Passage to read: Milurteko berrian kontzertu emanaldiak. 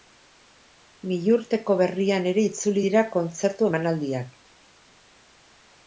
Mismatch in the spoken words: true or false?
true